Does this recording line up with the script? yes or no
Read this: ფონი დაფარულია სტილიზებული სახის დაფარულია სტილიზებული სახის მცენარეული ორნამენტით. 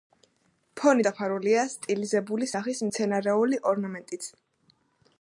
no